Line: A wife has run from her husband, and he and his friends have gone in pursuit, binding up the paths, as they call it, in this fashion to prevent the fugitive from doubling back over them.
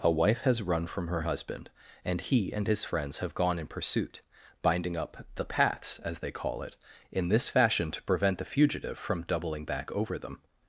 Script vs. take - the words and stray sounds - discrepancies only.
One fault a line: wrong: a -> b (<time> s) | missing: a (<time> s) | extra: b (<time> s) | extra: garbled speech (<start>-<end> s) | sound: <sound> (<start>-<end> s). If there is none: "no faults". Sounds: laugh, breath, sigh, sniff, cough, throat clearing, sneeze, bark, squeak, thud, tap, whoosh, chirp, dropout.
no faults